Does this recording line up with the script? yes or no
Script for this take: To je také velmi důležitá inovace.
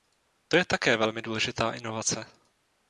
yes